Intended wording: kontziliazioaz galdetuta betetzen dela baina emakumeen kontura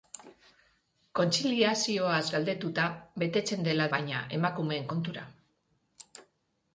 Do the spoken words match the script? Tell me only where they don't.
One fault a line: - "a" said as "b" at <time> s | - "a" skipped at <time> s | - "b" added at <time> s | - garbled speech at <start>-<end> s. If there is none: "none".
none